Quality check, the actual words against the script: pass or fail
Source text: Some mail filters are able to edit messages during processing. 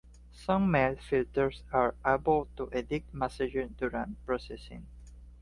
pass